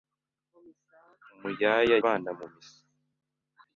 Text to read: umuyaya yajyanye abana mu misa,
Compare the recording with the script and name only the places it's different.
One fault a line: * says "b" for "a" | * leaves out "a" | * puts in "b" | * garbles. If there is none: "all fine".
* leaves out "yajyanye"